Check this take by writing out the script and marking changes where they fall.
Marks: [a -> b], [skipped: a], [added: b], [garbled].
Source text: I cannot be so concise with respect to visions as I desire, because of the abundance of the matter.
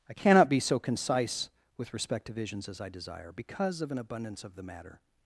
I cannot be so concise with respect to visions as I desire, because of [the -> an] abundance of the matter.